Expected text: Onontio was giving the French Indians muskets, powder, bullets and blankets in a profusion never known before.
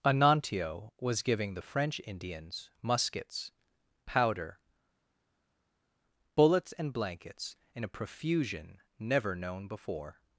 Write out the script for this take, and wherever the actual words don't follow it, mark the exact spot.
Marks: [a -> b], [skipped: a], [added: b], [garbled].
Onontio was giving the French Indians muskets, powder, bullets and blankets in a profusion never known before.